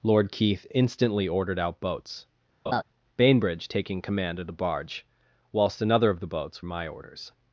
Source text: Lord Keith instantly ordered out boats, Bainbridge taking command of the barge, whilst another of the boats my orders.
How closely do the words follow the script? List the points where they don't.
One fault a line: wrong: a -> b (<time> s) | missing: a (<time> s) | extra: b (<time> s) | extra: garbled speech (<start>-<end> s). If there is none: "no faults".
no faults